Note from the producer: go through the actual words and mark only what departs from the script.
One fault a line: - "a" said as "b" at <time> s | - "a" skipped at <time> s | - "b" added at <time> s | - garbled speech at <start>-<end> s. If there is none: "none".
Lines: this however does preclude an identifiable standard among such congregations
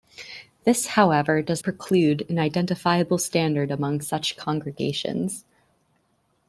none